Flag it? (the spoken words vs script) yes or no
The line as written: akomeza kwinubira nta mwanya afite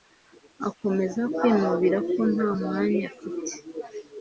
yes